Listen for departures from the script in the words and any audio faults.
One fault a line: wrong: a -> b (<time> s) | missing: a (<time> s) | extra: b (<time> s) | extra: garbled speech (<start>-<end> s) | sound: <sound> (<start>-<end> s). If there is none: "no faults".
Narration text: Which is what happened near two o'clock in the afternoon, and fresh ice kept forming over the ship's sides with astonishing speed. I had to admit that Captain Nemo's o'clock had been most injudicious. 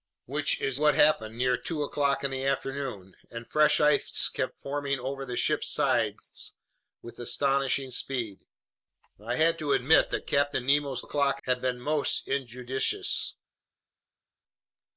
no faults